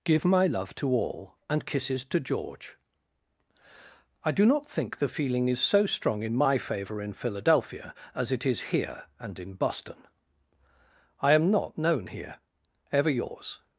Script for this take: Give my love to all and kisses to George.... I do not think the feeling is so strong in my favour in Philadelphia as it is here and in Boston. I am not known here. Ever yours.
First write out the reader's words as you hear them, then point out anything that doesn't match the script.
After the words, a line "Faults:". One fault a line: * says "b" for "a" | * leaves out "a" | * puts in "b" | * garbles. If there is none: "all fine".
Give my love to all and kisses to George.... I do not think the feeling is so strong in my favour in Philadelphia as it is here and in Boston. I am not known here. Ever yours.
Faults:
all fine